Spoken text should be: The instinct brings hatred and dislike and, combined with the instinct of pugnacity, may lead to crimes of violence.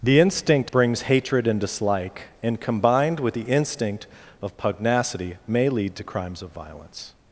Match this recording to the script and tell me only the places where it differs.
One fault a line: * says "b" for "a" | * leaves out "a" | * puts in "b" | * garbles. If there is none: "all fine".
all fine